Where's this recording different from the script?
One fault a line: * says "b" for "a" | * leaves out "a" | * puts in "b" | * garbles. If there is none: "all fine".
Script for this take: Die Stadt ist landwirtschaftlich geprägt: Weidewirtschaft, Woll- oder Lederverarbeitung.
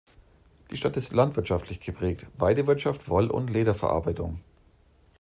* says "und" for "oder"